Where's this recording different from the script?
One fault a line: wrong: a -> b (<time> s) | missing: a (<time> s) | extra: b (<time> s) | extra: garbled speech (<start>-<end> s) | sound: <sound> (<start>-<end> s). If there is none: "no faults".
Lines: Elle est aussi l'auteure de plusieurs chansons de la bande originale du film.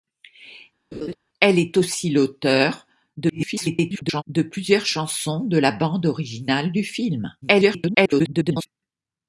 sound: laugh (0.9-1.2 s)
extra: garbled speech (3.2-4.2 s)
extra: garbled speech (7.4-8.7 s)